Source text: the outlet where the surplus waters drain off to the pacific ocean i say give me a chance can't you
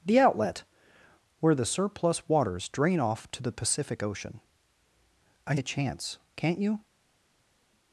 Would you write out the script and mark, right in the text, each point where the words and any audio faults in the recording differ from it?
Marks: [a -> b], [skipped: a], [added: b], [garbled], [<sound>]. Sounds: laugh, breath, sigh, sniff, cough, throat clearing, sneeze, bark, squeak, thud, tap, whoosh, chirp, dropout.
the outlet where the surplus waters drain off to the pacific ocean i [skipped: say give me] a chance can't you